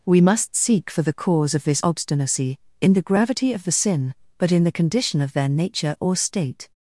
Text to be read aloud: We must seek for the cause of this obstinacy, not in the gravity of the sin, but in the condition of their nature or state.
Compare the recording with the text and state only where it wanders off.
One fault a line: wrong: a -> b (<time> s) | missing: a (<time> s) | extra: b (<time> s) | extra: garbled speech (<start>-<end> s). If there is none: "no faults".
missing: not (2.6 s)